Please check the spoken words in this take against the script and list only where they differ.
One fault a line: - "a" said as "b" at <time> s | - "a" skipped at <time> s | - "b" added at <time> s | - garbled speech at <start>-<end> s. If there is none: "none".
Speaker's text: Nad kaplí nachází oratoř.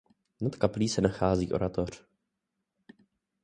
- "se" added at 0.9 s